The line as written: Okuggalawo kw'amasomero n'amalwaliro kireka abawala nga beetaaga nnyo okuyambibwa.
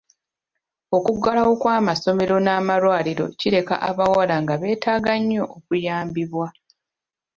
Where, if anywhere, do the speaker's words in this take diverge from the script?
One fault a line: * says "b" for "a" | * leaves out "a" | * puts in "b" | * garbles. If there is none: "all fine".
all fine